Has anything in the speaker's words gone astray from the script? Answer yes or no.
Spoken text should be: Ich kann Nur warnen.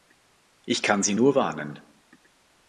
yes